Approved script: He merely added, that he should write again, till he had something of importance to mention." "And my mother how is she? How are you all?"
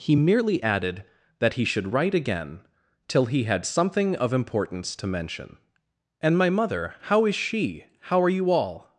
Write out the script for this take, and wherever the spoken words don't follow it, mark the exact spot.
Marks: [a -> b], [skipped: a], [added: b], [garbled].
He merely added, that he should write again, till he had something of importance to mention." "And my mother how is she? How are you all?"